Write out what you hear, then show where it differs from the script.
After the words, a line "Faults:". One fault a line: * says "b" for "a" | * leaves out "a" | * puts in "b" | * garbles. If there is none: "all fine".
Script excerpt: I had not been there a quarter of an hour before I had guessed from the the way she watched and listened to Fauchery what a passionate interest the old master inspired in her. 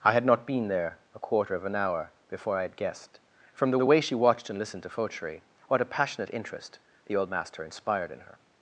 I had not been there a quarter of an hour before I had guessed from the the way she watched and listened to Fauchery what a passionate interest the old master inspired in her.
Faults:
all fine